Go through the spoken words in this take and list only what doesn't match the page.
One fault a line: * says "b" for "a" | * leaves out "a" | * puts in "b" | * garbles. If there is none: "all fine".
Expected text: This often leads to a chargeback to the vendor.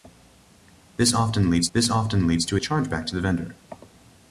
* puts in "this often leads"